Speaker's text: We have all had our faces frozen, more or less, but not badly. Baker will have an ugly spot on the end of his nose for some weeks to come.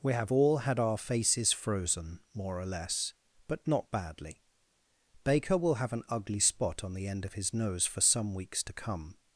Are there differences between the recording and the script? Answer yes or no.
no